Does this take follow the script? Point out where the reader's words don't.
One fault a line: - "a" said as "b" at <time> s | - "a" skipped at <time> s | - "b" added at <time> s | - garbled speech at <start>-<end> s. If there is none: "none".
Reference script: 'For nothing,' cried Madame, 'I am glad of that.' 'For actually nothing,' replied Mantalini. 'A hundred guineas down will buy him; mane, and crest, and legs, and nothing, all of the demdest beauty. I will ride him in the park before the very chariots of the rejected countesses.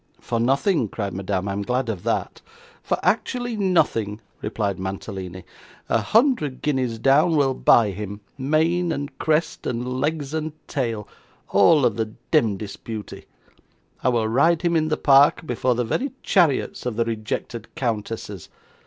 - "nothing" said as "tail" at 10.7 s